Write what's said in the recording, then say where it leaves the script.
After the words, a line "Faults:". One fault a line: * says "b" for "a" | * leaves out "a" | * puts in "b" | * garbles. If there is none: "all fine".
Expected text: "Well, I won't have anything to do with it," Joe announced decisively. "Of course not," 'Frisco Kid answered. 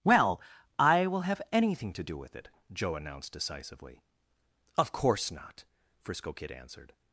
"Well, I will have anything to do with it," Joe announced decisively. "Of course not," 'Frisco Kid answered.
Faults:
* says "will" for "won't"